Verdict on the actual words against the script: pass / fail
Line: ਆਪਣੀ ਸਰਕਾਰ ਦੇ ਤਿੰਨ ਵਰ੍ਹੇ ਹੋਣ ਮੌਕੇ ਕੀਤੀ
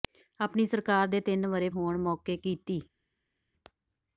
pass